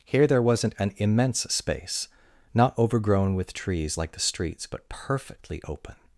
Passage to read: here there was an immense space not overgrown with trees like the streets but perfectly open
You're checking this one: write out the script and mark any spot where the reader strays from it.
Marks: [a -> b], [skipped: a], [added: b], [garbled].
here there [was -> wasn't] an immense space not overgrown with trees like the streets but perfectly open